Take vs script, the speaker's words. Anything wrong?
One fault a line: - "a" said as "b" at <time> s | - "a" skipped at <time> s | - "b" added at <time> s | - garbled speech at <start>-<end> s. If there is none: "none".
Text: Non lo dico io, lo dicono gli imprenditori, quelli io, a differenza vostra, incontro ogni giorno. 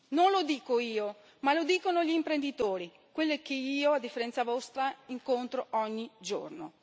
- "ma" added at 1.4 s
- "che" added at 3.4 s